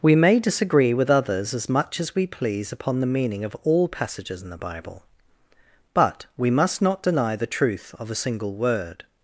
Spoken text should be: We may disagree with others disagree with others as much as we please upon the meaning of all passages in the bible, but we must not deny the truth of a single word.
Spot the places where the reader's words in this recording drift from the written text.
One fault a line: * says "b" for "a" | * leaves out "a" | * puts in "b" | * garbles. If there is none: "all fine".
* leaves out "disagree with others"